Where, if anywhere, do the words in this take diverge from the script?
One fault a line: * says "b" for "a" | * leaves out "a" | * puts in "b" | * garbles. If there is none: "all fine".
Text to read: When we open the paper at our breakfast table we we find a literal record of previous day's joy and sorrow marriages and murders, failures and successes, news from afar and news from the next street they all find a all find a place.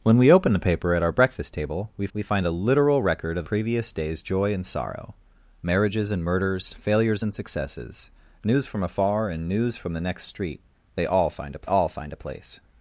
all fine